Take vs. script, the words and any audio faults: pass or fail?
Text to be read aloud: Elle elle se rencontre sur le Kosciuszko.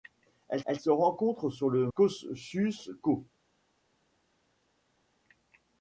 pass